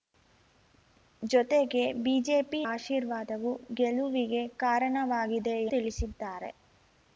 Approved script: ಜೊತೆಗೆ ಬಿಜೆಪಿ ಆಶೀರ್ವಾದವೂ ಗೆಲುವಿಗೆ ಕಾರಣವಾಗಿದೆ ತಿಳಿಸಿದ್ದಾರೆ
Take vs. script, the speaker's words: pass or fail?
pass